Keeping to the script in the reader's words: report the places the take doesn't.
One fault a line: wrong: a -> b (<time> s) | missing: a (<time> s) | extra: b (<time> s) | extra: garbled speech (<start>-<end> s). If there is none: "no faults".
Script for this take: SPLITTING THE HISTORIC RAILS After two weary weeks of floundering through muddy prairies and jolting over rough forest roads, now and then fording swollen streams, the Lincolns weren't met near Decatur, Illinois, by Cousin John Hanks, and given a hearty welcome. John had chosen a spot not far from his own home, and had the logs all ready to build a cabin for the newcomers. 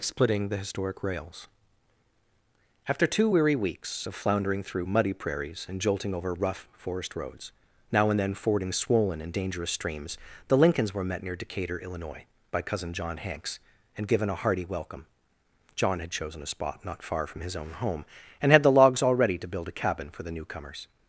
extra: and dangerous (9.2 s)
wrong: weren't -> were (10.9 s)